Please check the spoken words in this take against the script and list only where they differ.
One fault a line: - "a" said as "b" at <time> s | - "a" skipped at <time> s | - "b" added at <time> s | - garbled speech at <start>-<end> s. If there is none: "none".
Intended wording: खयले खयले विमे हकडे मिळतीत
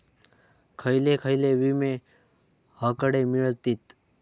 none